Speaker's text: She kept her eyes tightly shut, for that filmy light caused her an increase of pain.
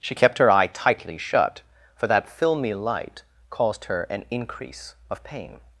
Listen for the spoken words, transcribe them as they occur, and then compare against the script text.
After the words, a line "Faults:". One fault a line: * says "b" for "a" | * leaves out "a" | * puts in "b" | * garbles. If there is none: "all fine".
She kept her eye tightly shut, for that filmy light caused her an increase of pain.
Faults:
* says "eye" for "eyes"